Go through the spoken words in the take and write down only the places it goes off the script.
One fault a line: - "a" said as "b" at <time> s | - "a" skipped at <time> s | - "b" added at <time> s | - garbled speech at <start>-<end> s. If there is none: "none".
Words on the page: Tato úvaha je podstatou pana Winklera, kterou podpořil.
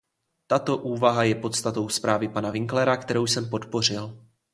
- "zprávy" added at 1.9 s
- "jsem" added at 3.3 s